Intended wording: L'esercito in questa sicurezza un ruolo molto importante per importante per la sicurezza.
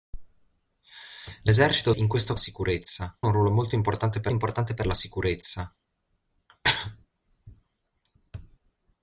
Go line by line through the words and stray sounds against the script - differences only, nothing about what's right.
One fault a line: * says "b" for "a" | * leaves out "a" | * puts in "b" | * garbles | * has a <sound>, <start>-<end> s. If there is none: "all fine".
all fine